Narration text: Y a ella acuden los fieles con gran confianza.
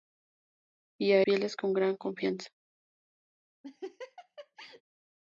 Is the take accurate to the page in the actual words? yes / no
no